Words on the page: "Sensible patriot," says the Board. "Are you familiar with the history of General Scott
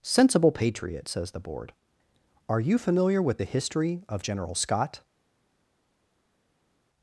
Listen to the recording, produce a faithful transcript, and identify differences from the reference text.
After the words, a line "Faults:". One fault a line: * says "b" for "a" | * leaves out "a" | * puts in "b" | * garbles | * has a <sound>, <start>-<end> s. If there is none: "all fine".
"Sensible patriot," says the Board. "Are you familiar with the history of General Scott
Faults:
all fine